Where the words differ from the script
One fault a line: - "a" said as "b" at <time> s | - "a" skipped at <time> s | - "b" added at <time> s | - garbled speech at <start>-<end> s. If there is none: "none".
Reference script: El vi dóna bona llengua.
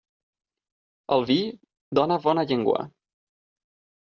none